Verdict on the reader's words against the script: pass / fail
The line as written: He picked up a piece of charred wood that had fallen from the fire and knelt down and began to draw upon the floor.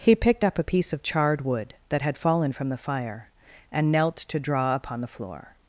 fail